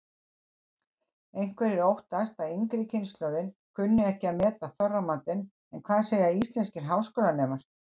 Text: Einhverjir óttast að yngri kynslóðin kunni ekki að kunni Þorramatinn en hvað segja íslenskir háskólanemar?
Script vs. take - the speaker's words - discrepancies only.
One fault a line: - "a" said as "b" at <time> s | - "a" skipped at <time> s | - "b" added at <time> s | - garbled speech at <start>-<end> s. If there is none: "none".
- "kunni" said as "meta" at 4.4 s